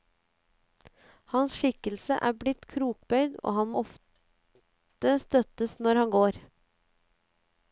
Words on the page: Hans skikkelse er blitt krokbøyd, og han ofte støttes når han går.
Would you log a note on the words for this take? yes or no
no